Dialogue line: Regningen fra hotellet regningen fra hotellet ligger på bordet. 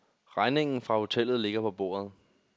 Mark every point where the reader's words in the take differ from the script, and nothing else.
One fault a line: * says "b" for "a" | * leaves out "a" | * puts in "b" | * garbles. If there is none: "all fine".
* leaves out "regningen fra hotellet"